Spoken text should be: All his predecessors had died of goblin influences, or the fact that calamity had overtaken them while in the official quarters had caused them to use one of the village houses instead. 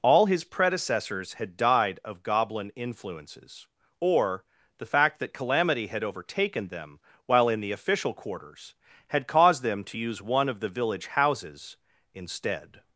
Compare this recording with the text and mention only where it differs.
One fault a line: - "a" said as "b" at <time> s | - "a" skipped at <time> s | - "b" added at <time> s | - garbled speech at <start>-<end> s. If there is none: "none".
none